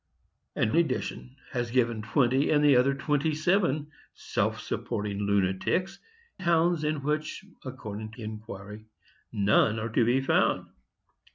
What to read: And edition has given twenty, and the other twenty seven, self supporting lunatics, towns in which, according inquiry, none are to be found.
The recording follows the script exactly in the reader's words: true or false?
true